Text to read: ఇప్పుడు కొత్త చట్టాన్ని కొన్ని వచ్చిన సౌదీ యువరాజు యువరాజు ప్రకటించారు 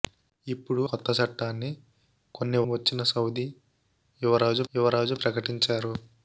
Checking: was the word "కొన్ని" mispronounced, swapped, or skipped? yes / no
no